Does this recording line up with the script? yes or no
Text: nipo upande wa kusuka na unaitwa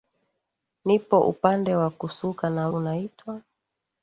yes